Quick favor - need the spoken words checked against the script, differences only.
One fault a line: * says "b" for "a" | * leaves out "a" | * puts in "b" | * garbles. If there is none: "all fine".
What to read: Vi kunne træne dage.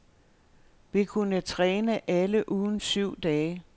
* puts in "alle ugens syv"